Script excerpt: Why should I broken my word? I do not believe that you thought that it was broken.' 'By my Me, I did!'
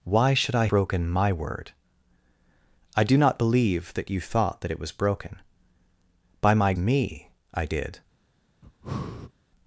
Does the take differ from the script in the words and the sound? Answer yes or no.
yes